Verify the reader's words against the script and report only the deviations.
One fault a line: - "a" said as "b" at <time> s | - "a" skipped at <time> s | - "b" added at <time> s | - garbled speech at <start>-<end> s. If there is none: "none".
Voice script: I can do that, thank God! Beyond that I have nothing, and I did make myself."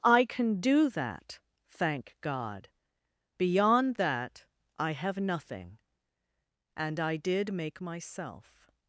none